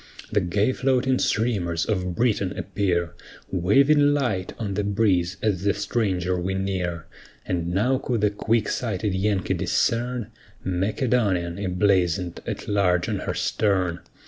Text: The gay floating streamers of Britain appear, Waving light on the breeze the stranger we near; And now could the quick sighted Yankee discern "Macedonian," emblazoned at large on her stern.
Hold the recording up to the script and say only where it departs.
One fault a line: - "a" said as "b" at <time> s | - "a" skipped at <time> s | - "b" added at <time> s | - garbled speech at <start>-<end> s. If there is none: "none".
- "as" added at 5.4 s